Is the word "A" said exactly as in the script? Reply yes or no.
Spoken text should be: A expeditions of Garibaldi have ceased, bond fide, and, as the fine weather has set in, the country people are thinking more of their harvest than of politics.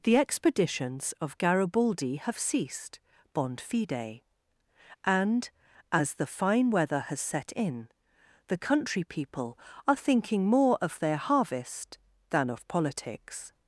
no